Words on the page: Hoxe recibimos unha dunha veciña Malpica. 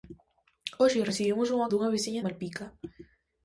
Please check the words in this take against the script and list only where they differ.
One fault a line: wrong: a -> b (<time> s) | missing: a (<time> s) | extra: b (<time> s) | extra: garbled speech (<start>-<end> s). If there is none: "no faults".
no faults